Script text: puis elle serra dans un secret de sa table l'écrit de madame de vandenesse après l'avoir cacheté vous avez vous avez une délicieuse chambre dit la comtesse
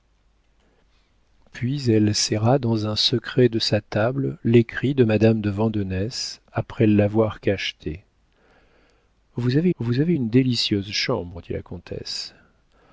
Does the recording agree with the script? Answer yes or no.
yes